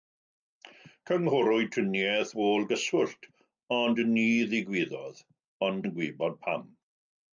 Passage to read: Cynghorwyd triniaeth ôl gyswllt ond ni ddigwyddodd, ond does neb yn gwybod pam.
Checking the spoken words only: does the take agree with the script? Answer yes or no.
no